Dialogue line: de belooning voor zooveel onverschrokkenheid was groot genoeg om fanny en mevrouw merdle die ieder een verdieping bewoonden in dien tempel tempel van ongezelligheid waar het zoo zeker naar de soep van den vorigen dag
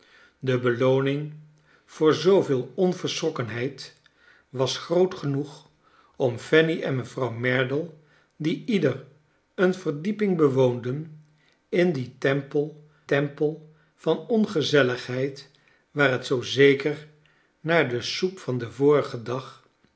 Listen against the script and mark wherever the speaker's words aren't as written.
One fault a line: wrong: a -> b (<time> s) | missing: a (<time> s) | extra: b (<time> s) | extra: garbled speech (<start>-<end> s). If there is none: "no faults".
no faults